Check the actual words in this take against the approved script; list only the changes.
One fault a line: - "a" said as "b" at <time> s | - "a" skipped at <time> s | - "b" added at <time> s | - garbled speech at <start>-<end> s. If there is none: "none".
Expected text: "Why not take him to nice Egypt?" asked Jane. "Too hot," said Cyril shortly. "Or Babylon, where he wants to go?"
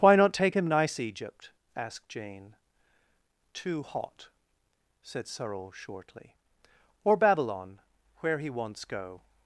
- "to" skipped at 0.6 s
- "to" skipped at 8.8 s